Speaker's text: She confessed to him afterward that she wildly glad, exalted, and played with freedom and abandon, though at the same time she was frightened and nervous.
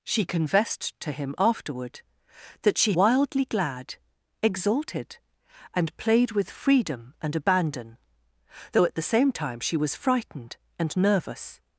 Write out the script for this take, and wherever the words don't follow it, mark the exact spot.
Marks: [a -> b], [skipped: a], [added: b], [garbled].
She confessed to him afterward that she wildly glad, exalted, and played with freedom and abandon, though at the same time she was frightened and nervous.